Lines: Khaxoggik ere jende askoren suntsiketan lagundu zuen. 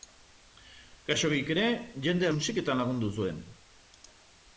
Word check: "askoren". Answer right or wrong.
wrong